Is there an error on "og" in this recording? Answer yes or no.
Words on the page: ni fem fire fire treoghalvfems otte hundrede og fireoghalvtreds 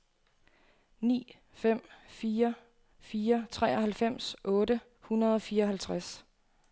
no